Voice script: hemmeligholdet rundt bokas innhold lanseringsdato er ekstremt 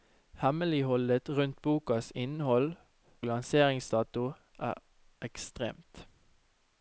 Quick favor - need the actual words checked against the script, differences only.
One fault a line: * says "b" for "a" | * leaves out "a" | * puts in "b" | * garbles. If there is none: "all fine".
all fine